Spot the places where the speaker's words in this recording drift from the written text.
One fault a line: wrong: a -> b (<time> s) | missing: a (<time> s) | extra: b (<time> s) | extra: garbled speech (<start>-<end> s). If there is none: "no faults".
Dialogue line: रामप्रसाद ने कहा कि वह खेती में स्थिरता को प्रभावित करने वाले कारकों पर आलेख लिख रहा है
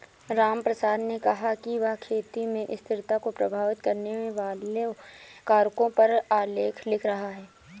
no faults